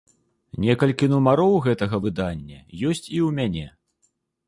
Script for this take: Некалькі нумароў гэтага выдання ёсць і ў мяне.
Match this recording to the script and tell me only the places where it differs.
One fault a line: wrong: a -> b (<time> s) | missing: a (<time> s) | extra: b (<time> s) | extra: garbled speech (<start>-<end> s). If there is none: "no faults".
no faults